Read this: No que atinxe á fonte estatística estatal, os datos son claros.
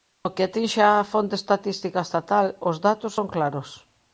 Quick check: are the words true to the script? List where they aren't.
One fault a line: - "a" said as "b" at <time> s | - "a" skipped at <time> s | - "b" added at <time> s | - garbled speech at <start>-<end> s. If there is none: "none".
none